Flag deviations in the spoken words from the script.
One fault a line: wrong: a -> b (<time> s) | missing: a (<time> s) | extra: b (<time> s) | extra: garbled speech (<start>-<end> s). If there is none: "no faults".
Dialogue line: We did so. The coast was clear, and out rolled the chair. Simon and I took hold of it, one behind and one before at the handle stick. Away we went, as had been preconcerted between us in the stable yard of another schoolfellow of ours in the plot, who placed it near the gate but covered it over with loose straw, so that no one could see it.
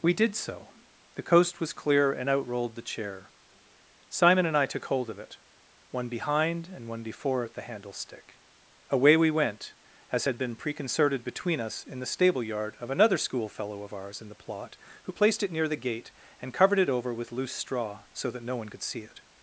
wrong: but -> and (16.4 s)